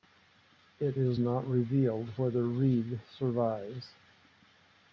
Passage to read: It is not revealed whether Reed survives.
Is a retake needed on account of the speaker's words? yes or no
no